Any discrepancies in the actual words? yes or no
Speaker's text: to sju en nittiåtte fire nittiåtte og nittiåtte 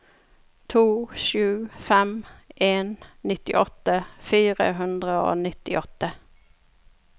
yes